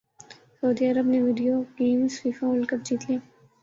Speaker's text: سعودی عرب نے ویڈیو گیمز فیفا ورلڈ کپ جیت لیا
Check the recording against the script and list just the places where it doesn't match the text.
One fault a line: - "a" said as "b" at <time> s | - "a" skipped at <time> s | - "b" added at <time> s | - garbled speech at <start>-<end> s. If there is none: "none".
none